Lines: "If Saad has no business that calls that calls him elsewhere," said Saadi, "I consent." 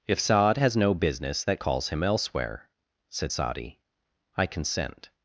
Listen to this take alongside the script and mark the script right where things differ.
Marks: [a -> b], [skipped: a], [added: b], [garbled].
"If Saad has no business that calls [skipped: that calls] him elsewhere," said Saadi, "I consent."